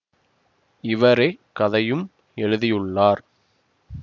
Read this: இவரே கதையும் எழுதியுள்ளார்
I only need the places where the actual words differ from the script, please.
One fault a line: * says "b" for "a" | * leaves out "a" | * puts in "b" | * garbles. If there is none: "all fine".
all fine